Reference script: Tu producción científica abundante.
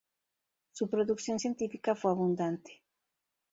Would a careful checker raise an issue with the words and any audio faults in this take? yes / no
yes